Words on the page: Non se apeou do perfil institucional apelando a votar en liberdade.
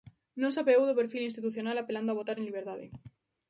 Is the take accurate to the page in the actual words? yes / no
yes